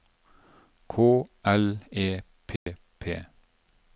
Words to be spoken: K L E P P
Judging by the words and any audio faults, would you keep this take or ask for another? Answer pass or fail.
fail